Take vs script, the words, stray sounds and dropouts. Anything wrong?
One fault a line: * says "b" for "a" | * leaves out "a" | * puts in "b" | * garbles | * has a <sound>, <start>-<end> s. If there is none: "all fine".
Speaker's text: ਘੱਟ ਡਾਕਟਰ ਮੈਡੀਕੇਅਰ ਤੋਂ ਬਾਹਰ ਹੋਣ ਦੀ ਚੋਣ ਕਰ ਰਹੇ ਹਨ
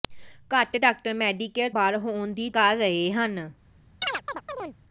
* leaves out "ਤੋਂ"
* leaves out "ਚੋਣ"
* has a chirp, 4.0-4.8 s